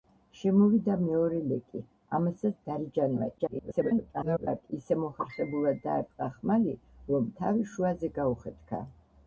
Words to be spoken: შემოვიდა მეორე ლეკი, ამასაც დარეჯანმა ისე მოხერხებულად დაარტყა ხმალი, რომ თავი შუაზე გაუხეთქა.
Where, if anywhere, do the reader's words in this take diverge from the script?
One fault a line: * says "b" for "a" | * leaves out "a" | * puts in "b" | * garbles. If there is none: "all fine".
* garbles